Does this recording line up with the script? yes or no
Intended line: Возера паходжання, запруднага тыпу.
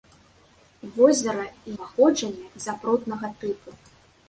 yes